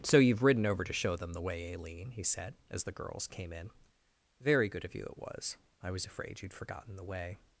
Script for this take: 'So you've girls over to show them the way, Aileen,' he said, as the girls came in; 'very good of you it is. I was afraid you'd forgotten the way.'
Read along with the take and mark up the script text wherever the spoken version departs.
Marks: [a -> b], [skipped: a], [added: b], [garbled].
'So you've [girls -> ridden] over to show them the way, Aileen,' he said, as the girls came in; 'very good of you it [is. -> was] I was afraid you'd forgotten the way.'